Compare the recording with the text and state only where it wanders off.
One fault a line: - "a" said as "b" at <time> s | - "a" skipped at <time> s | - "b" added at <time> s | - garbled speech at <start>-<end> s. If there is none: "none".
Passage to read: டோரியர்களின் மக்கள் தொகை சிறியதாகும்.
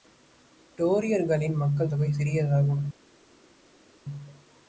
none